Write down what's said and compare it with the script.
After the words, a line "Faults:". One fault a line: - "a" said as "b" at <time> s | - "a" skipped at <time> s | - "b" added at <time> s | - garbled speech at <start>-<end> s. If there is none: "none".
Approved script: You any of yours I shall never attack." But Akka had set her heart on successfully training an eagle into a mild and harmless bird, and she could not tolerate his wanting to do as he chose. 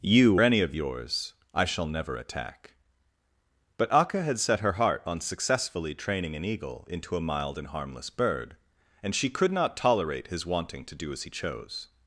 You any of yours I shall never attack." But Akka had set her heart on successfully training an eagle into a mild and harmless bird, and she could not tolerate his wanting to do as he chose.
Faults:
none